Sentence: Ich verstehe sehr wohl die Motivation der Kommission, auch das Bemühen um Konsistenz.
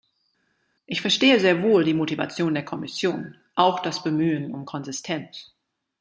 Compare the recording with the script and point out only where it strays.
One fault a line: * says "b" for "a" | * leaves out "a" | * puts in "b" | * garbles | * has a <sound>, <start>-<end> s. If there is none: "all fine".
all fine